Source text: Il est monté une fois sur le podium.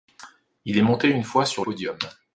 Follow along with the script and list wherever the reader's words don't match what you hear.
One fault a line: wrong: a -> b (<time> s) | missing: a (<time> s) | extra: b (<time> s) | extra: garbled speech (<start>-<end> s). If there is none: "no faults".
missing: le (1.6 s)